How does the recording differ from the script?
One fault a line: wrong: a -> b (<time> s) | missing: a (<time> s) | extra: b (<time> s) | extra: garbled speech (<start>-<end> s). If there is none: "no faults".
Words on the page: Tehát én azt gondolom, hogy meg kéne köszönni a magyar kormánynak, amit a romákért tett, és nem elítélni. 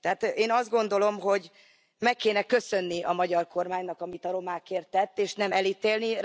no faults